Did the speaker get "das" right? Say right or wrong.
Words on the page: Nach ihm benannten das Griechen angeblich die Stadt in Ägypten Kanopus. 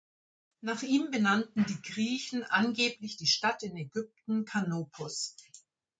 wrong